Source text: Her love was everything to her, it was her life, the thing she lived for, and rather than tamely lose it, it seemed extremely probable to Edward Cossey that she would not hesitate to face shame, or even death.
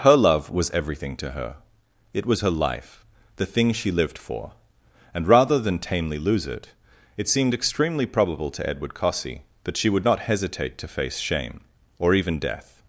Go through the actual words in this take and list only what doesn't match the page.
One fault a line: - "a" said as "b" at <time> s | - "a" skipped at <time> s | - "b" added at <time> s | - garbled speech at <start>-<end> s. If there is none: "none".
none